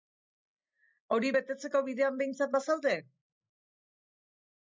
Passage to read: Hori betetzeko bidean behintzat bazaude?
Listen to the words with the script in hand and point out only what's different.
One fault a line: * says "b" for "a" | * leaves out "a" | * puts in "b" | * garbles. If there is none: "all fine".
all fine